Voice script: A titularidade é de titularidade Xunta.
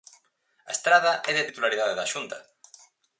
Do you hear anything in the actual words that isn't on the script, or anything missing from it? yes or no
yes